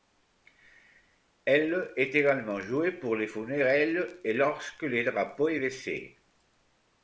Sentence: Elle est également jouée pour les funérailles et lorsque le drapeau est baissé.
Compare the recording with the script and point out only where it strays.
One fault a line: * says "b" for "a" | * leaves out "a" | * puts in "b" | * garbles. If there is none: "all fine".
all fine